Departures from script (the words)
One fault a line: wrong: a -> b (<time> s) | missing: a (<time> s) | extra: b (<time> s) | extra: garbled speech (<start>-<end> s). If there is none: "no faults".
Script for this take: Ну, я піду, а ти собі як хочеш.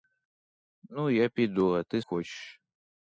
missing: собі як (2.0 s)